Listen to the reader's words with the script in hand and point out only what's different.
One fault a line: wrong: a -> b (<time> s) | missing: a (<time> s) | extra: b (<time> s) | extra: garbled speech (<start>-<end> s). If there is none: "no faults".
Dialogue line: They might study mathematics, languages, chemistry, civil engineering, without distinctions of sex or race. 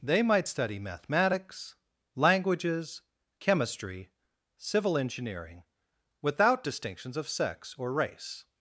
no faults